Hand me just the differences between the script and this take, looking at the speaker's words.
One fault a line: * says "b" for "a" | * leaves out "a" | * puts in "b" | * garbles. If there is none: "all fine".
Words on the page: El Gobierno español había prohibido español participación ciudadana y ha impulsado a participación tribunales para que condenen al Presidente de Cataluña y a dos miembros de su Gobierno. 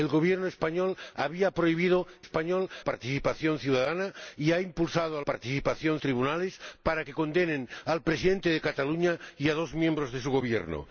all fine